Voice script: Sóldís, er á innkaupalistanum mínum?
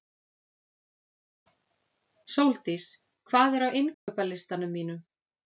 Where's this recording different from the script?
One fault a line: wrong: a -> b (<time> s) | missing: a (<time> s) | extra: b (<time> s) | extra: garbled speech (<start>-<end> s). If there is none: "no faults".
extra: hvað (3.3 s)